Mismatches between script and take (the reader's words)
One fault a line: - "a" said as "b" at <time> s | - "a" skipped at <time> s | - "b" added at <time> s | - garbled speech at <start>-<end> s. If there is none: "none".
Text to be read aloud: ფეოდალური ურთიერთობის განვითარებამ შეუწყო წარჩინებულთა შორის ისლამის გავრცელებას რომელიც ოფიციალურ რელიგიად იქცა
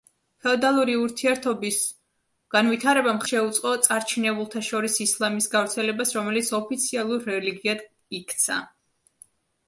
none